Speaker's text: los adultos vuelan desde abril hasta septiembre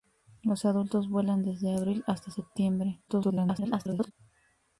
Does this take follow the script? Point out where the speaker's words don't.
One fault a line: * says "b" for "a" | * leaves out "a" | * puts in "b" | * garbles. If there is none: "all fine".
* garbles